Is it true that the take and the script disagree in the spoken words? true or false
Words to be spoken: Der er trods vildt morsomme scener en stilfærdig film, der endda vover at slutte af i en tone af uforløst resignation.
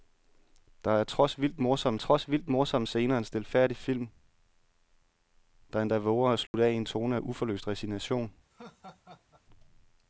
true